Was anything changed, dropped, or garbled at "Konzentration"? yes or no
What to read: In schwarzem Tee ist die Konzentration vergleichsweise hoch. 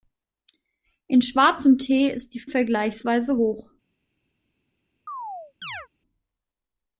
yes